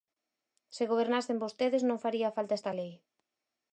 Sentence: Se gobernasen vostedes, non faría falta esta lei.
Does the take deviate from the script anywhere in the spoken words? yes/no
no